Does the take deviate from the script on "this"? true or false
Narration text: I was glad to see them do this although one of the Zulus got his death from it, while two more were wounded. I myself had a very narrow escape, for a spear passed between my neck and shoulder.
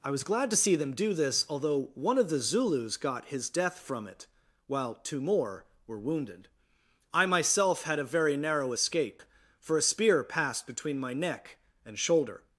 false